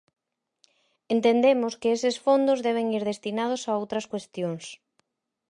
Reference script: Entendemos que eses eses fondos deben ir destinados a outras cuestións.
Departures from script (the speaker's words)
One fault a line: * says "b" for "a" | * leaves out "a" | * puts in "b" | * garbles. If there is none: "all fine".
* leaves out "eses"